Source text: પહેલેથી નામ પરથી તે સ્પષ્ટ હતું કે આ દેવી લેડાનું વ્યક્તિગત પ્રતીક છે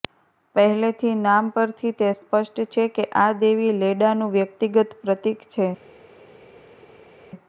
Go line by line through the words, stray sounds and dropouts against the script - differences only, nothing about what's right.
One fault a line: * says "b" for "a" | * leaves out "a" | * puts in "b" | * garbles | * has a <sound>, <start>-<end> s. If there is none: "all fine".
* says "છે" for "હતું"